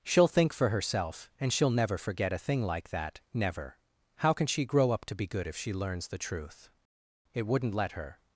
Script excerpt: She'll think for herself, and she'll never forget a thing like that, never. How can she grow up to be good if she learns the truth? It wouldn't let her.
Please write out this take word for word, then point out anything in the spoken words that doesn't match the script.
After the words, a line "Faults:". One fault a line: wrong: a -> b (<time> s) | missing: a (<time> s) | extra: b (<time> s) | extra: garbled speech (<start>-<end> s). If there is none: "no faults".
She'll think for herself, and she'll never forget a thing like that, never. How can she grow up to be good if she learns the truth? It wouldn't let her.
Faults:
no faults